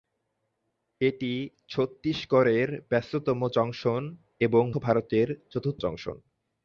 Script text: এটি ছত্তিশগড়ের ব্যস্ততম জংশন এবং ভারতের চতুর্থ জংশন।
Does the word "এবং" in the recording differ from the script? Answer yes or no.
no